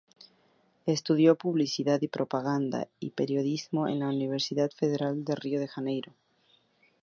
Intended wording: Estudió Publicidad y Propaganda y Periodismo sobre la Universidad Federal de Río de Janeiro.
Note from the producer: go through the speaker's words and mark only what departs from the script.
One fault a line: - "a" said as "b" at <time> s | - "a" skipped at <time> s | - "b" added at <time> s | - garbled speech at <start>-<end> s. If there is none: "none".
- "sobre" said as "en" at 3.9 s